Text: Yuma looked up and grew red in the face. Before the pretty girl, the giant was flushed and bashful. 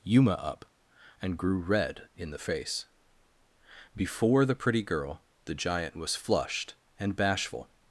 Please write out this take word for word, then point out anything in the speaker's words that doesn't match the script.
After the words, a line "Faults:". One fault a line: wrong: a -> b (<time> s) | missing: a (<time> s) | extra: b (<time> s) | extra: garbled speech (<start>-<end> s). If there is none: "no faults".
Yuma up and grew red in the face. Before the pretty girl, the giant was flushed and bashful.
Faults:
missing: looked (0.3 s)